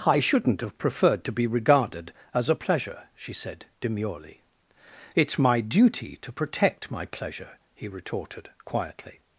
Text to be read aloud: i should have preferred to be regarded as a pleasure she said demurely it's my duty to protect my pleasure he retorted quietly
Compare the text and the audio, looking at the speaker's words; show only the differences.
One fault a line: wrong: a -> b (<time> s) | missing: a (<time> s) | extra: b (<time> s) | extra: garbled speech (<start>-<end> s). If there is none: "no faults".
wrong: should -> shouldn't (0.2 s)